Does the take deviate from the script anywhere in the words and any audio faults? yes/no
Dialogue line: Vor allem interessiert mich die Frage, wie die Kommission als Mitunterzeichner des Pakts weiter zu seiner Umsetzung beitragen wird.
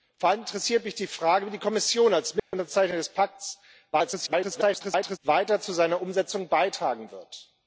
yes